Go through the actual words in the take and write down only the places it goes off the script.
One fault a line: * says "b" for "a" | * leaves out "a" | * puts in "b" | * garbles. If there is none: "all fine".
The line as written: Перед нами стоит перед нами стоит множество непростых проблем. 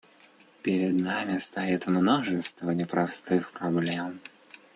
* leaves out "перед нами стоит"